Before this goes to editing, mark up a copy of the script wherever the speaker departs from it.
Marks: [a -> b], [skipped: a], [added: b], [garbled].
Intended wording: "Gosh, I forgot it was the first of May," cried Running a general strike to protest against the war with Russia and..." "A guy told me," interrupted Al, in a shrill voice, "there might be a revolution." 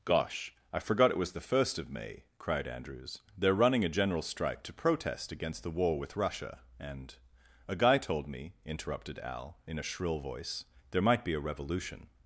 "Gosh, I forgot it was the first of May," cried [added: Andrews They're] Running a general strike to protest against the war with Russia and..." "A guy told me," interrupted Al, in a shrill voice, "there might be a revolution."